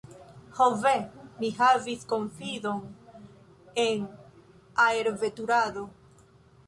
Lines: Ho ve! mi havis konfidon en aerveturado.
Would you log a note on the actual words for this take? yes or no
no